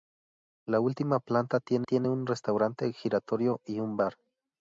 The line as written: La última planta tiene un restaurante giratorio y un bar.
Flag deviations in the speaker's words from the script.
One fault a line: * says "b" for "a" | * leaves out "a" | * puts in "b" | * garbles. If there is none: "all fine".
* puts in "tiene"